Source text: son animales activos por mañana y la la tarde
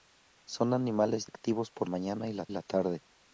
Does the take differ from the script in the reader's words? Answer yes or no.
no